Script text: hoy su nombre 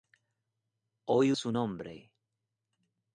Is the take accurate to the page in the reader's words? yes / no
yes